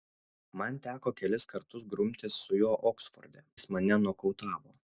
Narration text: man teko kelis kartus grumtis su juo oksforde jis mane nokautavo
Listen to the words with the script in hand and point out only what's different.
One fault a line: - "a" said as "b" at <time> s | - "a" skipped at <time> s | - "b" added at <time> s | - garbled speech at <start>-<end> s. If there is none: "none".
none